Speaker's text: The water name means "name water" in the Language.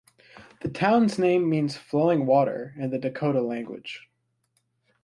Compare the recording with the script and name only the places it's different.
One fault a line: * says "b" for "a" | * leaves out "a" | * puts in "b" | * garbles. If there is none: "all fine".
* says "town's" for "water"
* says "flowing" for "name"
* puts in "Dakota"